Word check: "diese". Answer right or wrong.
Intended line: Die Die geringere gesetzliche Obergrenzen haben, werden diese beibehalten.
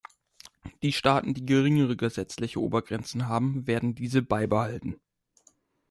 right